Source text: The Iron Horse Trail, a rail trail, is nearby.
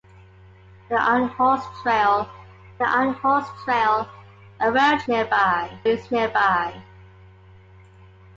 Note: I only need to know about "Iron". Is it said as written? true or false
true